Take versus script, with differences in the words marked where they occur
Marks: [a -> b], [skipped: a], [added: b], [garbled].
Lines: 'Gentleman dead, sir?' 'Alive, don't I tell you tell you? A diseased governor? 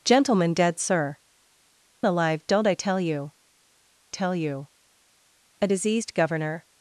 'Gentleman dead, sir?' 'Alive, don't I tell you tell you? A diseased governor?